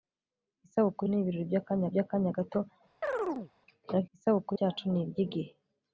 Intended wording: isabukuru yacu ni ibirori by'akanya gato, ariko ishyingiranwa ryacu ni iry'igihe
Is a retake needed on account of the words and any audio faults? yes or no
yes